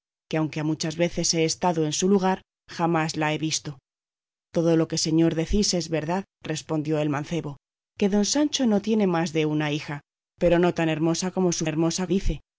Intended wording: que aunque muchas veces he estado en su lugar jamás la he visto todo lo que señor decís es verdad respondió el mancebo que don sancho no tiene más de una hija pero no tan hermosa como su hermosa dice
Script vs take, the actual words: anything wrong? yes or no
no